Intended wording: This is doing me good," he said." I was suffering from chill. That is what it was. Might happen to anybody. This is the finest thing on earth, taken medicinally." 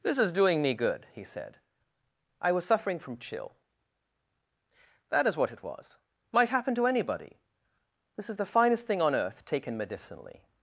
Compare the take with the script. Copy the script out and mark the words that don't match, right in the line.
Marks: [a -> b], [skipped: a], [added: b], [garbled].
This is doing me good," he said." I was suffering from chill. That is what it was. Might happen to anybody. This is the finest thing on earth, taken medicinally."